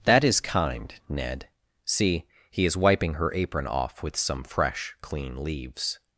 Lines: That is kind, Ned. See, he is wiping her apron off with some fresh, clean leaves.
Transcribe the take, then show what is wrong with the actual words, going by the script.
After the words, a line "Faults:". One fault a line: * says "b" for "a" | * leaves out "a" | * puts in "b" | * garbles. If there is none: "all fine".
That is kind, Ned. See, he is wiping her apron off with some fresh, clean leaves.
Faults:
all fine